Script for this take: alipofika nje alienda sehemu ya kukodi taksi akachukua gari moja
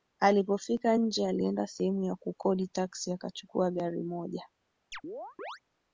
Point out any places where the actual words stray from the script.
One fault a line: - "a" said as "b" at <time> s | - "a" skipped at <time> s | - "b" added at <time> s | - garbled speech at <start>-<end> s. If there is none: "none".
none